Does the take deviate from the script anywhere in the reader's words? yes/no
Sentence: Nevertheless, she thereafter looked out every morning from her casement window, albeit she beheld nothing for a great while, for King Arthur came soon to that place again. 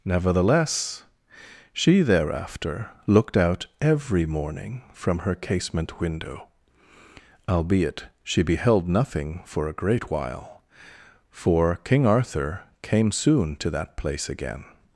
no